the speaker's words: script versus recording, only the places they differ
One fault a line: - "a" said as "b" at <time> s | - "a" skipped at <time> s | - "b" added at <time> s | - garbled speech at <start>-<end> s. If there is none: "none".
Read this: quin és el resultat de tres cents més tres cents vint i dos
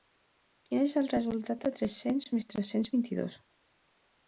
none